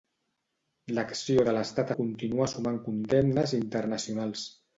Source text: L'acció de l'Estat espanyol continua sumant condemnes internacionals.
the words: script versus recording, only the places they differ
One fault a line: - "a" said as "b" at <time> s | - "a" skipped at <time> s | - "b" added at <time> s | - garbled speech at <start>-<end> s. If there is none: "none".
- "espanyol" skipped at 1.9 s